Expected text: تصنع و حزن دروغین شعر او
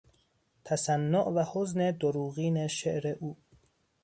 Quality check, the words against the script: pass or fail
pass